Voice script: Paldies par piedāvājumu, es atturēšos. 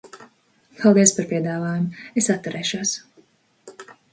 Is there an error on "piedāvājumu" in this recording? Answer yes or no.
no